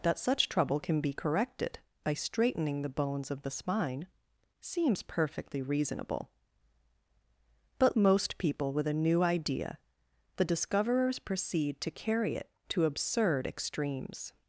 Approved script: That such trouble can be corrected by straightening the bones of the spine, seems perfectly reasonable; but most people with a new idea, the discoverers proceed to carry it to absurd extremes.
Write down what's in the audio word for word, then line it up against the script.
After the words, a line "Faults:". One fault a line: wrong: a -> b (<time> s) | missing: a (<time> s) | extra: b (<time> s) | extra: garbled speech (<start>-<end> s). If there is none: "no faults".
That such trouble can be corrected by straightening the bones of the spine, seems perfectly reasonable; but most people with a new idea, the discoverers proceed to carry it to absurd extremes.
Faults:
no faults